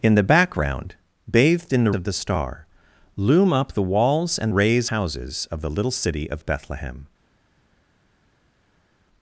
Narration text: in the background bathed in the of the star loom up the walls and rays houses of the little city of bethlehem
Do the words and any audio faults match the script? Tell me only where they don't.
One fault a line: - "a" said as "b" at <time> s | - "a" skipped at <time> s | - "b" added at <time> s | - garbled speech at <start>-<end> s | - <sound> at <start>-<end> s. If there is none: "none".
none